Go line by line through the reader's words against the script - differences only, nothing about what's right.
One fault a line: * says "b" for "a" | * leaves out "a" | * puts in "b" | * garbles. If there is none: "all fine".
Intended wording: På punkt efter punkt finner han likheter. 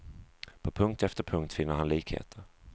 all fine